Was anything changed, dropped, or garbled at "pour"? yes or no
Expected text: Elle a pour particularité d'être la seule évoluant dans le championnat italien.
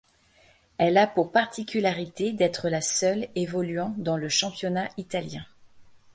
no